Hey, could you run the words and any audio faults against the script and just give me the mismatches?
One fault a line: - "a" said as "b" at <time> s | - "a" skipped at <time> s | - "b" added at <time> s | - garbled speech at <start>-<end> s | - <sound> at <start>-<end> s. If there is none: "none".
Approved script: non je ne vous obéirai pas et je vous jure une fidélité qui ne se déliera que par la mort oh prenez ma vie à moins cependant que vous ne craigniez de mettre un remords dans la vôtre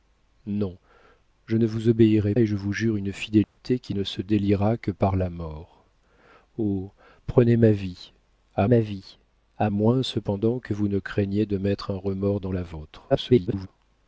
- "pas" skipped at 2.3 s
- dropout at 3.4-3.6 s
- "ma vie à" added at 8.6 s
- garbled speech at 13.1-13.7 s